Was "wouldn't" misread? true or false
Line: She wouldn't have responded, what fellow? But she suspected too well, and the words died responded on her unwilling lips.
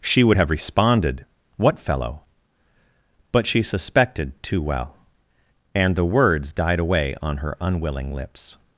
true